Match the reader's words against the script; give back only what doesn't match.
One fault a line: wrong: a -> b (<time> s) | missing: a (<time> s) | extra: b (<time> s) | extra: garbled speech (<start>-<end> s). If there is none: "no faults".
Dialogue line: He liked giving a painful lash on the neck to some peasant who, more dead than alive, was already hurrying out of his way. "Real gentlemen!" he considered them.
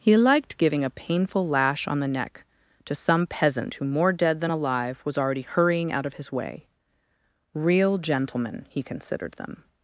no faults